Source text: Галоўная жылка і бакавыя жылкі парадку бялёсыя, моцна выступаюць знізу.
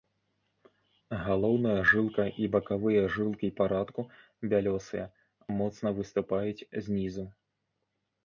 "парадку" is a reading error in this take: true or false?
false